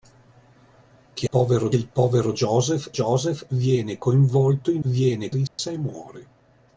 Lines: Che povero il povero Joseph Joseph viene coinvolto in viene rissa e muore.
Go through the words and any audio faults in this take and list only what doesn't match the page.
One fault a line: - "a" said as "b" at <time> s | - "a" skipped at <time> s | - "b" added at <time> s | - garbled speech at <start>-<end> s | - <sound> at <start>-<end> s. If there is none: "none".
- dropout at 5.5-5.6 s